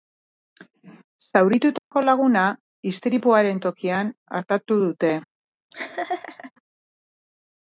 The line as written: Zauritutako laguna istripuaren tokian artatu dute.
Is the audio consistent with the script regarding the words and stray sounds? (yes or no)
no